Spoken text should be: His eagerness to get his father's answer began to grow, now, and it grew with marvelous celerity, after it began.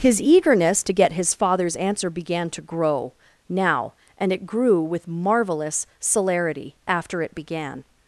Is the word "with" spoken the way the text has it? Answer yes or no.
yes